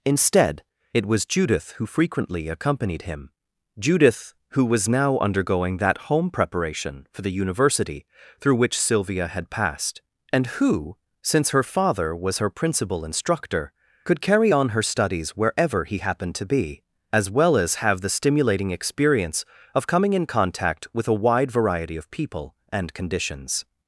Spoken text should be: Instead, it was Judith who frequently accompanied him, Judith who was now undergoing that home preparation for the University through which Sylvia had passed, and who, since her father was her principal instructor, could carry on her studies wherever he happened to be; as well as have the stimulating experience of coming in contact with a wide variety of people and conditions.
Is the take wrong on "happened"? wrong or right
right